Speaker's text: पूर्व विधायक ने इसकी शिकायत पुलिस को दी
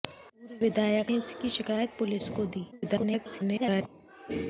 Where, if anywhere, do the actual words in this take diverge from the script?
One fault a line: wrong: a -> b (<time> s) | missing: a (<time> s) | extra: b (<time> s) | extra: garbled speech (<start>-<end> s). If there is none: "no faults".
missing: ने (1.1 s)
extra: garbled speech (2.7-3.9 s)